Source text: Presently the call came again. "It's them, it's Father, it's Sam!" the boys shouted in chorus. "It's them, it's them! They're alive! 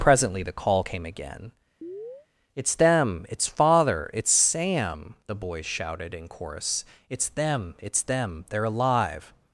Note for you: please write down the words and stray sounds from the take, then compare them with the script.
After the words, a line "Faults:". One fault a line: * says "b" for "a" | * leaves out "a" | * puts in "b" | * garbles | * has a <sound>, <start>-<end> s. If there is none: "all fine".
Presently the call came again. "It's them, it's Father, it's Sam!" the boys shouted in chorus. "It's them, it's them! They're alive!
Faults:
* has a chirp, 1.8-2.3 s